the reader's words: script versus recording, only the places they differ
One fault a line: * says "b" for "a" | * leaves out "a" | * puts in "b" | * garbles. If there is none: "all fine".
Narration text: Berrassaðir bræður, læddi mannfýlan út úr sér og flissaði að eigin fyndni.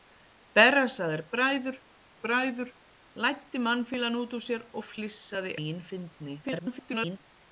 * puts in "bræður"
* leaves out "að"
* garbles